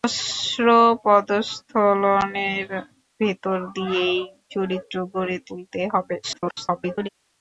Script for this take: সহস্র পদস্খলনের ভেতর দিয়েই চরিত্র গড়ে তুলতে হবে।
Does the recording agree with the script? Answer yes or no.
no